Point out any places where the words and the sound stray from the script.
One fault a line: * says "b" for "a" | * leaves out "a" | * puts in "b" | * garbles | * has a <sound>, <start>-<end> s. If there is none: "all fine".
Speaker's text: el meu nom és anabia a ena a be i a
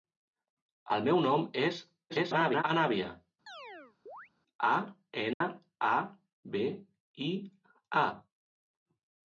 * garbles
* has a chirp, 3.5-4.3 s
* has a dropout, 5.3-5.4 s